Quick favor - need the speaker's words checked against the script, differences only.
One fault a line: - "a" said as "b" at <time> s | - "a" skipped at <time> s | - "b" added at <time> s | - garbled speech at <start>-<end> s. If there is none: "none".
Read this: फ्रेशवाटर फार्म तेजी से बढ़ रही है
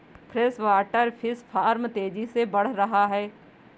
- "फिश" added at 1.2 s
- "रही" said as "रहा" at 2.7 s